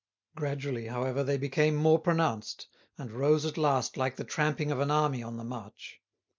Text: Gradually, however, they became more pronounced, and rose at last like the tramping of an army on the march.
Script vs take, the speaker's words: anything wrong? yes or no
no